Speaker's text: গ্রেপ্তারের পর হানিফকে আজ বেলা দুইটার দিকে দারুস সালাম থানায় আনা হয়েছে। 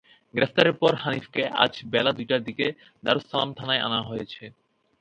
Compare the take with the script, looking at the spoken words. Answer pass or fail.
pass